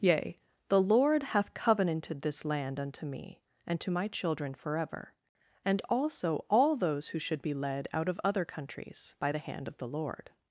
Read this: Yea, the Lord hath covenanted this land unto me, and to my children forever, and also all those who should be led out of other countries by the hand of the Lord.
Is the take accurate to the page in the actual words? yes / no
yes